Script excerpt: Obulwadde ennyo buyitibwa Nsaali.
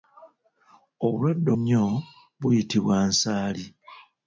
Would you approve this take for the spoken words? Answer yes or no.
yes